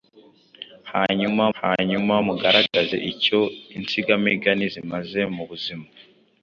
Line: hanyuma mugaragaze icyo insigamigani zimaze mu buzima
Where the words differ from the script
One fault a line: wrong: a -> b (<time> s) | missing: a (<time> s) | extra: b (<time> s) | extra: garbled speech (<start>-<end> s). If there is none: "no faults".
extra: hanyuma (1.6 s)